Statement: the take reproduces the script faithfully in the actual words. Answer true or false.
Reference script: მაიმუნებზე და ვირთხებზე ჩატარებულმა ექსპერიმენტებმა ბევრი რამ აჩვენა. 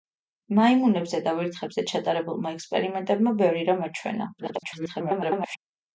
false